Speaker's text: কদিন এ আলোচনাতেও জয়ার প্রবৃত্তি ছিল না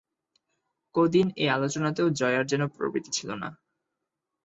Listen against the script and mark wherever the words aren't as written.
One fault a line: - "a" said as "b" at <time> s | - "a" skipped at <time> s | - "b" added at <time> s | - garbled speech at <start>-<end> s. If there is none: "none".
- "যেন" added at 2.5 s